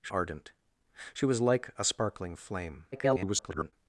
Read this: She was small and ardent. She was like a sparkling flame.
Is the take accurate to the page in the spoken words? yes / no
no